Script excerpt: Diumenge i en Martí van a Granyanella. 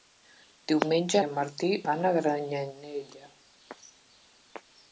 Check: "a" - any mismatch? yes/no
no